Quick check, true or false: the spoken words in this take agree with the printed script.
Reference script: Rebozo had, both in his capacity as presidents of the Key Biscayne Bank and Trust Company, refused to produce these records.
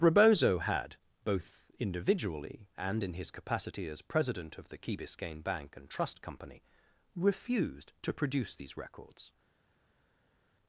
false